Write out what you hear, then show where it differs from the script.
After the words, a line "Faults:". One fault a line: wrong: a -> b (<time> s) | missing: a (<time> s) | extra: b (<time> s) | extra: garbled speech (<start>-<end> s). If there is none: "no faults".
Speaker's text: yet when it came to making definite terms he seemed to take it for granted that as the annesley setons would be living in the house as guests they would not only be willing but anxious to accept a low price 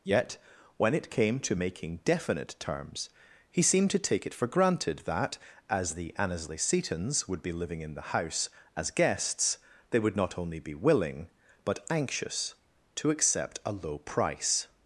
yet when it came to making definite terms he seemed to take it for granted that as the annesley setons would be living in the house as guests they would not only be willing but anxious to accept a low price
Faults:
no faults